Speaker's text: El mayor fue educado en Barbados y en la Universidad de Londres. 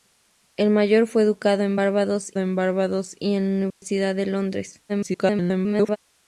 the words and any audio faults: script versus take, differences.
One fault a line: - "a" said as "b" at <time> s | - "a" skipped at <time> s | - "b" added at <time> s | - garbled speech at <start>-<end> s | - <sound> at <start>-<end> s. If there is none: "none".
- "en Barbados" added at 2.4 s
- dropout at 3.7-3.8 s
- garbled speech at 4.9-6.0 s